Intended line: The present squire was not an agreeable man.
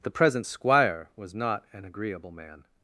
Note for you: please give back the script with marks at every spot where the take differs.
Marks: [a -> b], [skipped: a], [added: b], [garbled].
The present squire was not an agreeable man.